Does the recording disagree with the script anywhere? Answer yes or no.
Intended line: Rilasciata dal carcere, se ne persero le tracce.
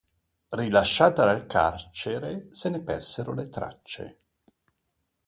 no